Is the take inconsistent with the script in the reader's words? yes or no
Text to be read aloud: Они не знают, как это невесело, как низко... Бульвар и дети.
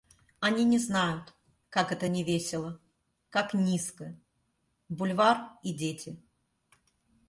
no